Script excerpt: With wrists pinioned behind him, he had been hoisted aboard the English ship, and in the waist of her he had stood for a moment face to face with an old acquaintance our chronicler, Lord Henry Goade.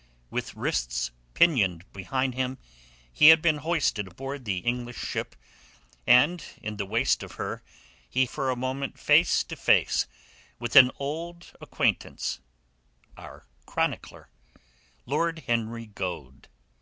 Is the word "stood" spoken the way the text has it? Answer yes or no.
no